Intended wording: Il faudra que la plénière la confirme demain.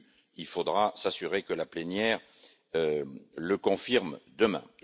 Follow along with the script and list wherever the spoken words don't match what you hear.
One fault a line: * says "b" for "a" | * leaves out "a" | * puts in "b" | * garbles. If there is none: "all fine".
* puts in "s'assurer"
* says "le" for "la"